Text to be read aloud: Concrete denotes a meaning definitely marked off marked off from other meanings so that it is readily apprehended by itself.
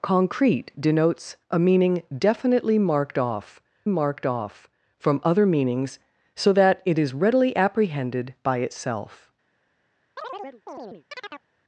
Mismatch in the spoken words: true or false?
false